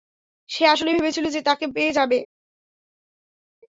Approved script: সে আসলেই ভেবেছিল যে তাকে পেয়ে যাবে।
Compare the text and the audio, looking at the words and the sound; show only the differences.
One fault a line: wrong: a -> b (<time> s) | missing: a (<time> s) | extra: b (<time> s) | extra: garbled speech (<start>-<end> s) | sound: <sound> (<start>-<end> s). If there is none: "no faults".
no faults